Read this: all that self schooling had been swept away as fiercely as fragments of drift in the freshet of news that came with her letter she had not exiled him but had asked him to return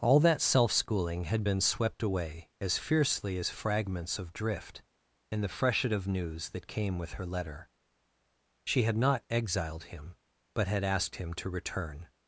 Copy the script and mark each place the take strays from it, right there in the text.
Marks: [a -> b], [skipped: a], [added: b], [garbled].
all that self schooling had been swept away as fiercely as fragments of drift in the freshet of news that came with her letter she had not exiled him but had asked him to return